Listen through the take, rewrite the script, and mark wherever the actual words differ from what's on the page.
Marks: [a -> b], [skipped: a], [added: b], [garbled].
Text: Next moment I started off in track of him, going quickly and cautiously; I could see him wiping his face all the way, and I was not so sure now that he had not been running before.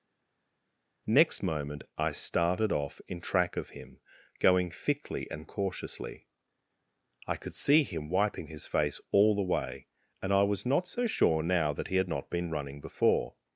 Next moment I started off in track of him, going [quickly -> thickly] and cautiously; I could see him wiping his face all the way, and I was not so sure now that he had not been running before.